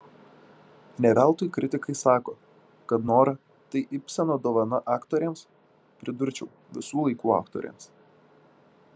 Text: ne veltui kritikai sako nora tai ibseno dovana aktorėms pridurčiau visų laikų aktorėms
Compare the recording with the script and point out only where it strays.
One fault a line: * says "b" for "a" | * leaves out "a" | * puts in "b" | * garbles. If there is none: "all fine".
* puts in "kad"